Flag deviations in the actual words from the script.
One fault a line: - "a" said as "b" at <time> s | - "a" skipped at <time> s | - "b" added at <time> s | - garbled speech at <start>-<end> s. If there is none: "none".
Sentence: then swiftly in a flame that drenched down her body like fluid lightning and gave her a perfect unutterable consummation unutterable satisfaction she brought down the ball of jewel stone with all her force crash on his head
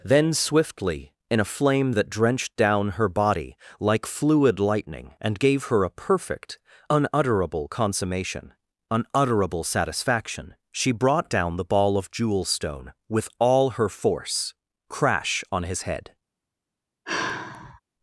none